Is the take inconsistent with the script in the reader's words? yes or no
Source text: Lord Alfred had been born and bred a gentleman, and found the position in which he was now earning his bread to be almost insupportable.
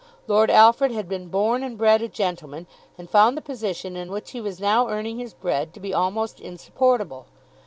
no